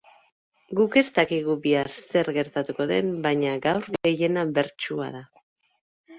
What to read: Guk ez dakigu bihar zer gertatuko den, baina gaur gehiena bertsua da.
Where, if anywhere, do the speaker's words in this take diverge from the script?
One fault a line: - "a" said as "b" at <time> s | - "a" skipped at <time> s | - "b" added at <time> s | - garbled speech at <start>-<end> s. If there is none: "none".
none